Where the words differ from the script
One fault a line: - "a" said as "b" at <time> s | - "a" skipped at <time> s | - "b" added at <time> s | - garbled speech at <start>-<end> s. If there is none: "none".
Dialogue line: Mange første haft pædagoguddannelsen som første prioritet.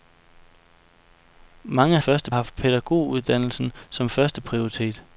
none